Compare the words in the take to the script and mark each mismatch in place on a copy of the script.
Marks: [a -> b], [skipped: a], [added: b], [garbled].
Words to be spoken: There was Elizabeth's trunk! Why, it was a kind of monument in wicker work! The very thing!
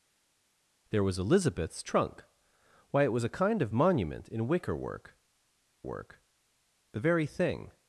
There was Elizabeth's trunk! Why, it was a kind of monument in wicker work! [added: work] The very thing!